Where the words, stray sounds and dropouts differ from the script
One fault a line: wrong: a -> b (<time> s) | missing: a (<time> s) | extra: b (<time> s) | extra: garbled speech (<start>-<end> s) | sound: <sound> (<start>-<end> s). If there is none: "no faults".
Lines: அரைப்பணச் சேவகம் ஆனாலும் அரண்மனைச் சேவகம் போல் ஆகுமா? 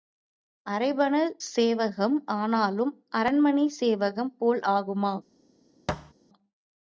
sound: thud (5.9-6.1 s)